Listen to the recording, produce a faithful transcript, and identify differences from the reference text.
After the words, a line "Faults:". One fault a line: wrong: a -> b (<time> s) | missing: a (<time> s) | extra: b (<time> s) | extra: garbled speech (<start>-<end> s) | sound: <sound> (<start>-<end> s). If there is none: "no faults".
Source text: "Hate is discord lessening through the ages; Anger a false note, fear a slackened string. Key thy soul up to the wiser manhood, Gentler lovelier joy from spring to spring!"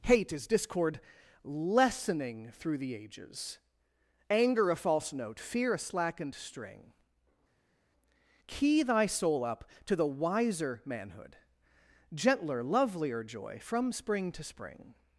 "Hate is discord lessening through the ages; Anger a false note, fear a slackened string. Key thy soul up to the wiser manhood, Gentler lovelier joy from spring to spring!"
Faults:
no faults